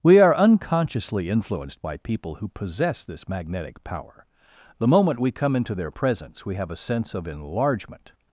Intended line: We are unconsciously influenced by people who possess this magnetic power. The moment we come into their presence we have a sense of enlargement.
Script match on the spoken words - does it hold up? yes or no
yes